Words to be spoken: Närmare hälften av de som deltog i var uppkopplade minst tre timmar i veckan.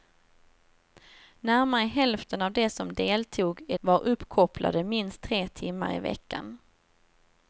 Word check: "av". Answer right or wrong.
right